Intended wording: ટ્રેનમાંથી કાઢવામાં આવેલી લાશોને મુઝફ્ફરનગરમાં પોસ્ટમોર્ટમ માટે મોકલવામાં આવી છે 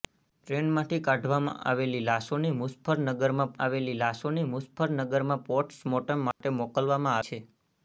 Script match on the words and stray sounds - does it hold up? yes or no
no